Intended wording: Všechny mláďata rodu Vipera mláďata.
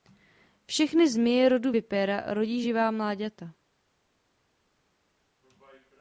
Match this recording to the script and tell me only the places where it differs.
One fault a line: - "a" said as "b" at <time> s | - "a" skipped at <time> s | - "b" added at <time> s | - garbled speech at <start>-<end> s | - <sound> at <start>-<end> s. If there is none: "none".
- "mláďata" said as "zmije" at 1.1 s
- "rodí živá" added at 2.3 s